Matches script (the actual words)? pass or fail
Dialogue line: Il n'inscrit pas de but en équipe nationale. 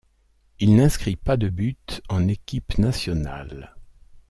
pass